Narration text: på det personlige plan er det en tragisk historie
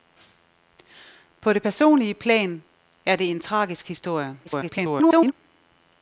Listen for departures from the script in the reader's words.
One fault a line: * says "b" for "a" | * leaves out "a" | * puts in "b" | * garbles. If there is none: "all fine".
* garbles